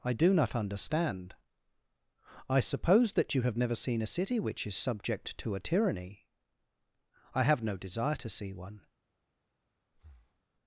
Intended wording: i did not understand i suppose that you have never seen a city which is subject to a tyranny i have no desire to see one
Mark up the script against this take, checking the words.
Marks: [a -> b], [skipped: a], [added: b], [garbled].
i [did -> do] not understand i suppose that you have never seen a city which is subject to a tyranny i have no desire to see one